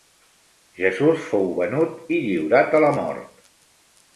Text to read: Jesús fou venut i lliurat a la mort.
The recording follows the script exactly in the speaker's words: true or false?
true